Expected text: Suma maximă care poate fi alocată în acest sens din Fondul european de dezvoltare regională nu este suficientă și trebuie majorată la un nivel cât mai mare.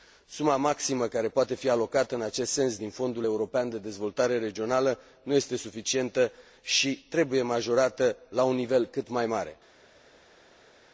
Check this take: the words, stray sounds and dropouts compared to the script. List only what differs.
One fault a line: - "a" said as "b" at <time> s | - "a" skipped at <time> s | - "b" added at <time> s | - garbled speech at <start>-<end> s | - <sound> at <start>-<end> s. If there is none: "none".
none